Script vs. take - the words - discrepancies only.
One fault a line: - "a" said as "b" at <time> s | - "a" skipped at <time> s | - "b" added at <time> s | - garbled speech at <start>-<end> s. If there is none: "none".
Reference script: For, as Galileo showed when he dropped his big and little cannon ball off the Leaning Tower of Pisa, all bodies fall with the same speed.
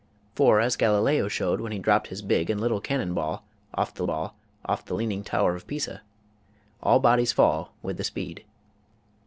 - "ball off the" added at 4.0 s
- "same" skipped at 8.0 s